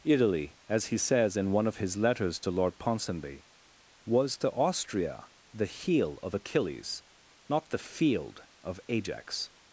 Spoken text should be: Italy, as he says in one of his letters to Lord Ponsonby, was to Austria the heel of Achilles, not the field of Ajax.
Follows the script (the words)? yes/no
yes